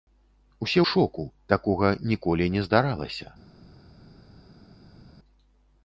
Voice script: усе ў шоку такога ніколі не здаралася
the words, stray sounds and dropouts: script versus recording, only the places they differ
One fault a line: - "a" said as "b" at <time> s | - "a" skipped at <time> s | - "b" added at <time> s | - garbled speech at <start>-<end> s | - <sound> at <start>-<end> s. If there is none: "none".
- "ў" skipped at 0.8 s